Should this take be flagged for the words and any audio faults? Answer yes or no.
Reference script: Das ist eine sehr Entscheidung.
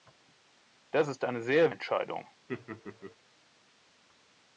yes